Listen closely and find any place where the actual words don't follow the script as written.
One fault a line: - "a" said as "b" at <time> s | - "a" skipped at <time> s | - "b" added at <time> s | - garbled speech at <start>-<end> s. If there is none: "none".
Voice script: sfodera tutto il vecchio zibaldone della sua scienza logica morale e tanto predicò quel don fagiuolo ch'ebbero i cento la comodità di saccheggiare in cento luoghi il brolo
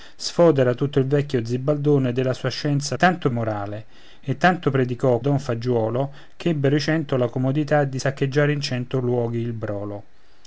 - "logica" said as "tanto" at 3.0 s
- "quel" skipped at 5.2 s